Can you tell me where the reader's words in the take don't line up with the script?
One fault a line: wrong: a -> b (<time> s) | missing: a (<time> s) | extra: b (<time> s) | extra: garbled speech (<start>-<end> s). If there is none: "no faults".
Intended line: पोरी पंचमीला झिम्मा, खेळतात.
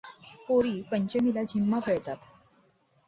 no faults